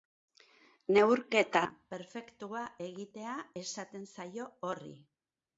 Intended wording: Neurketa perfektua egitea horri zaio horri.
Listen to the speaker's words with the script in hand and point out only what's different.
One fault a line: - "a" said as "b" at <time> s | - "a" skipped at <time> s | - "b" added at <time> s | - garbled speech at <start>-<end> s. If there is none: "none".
- "horri" said as "esaten" at 3.6 s